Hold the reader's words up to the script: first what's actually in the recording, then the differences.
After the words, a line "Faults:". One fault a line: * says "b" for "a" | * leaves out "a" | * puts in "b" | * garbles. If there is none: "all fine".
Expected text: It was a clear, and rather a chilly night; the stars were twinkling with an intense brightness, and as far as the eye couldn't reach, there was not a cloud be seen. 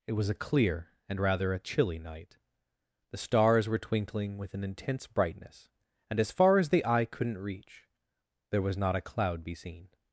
It was a clear, and rather a chilly night; the stars were twinkling with an intense brightness, and as far as the eye couldn't reach, there was not a cloud be seen.
Faults:
all fine